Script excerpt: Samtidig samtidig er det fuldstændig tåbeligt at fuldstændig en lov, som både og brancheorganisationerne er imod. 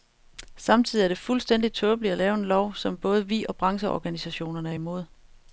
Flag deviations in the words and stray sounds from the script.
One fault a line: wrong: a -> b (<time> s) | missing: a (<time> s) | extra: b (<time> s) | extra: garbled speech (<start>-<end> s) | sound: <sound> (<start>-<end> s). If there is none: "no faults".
missing: samtidig (1.0 s)
wrong: fuldstændig -> lave (2.2 s)
extra: vi (3.3 s)